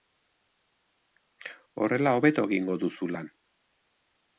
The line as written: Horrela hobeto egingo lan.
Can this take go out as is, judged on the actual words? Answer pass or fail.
fail